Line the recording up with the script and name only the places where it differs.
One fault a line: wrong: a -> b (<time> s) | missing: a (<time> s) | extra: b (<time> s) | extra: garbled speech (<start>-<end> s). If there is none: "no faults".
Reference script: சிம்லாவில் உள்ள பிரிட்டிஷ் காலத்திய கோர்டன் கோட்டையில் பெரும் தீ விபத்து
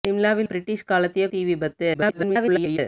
missing: உள்ள (0.5 s)
missing: கோர்டன் கோட்டையில் பெரும் (1.3 s)
extra: garbled speech (1.9-2.8 s)